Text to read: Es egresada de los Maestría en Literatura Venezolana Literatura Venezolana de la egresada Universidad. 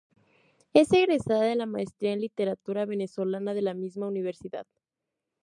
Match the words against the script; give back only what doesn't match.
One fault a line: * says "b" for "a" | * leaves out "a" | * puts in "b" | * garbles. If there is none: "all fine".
* says "la" for "los"
* leaves out "Literatura Venezolana"
* says "misma" for "egresada"